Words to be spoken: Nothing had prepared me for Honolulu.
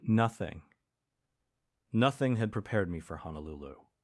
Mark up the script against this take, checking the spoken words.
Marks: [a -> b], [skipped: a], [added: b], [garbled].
Nothing [added: nothing] had prepared me for Honolulu.